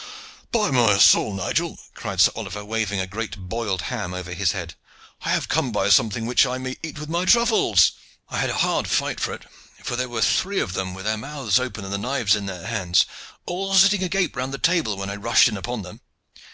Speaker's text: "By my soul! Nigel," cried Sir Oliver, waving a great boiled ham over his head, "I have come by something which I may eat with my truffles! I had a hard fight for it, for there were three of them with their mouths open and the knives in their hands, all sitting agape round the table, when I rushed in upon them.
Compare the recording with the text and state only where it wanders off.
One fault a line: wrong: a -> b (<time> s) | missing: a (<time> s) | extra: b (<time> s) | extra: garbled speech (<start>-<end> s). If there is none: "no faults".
no faults